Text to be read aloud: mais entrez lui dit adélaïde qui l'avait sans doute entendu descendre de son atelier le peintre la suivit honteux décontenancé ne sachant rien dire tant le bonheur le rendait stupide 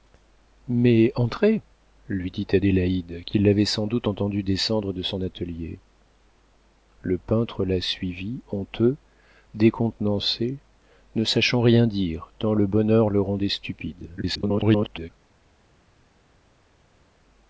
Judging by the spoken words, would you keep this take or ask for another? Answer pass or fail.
fail